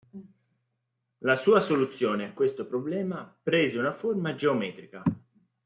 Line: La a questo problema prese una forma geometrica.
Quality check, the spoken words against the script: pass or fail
fail